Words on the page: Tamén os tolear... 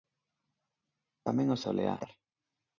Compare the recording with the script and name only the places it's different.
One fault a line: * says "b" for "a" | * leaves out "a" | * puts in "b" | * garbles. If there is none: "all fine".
all fine